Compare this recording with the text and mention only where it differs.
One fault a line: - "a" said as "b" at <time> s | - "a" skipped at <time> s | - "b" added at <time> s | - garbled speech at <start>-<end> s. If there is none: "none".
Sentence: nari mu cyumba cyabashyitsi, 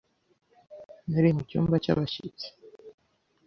none